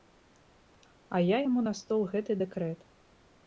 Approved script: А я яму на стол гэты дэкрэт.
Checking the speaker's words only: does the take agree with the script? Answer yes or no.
yes